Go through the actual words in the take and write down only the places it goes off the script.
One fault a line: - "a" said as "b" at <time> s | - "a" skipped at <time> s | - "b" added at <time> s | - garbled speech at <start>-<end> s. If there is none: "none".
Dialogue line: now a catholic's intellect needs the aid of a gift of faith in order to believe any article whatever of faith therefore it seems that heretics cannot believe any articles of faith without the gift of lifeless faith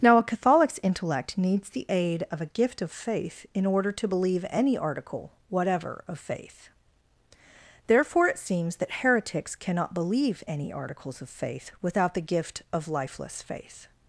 none